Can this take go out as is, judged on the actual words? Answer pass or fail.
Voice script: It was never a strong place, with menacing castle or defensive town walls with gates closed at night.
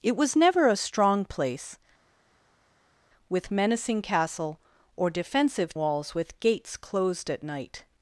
fail